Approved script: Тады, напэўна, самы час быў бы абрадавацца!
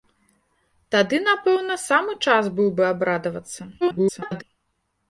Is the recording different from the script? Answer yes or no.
yes